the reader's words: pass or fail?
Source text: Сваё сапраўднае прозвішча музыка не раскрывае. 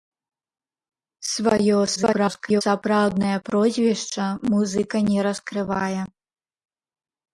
fail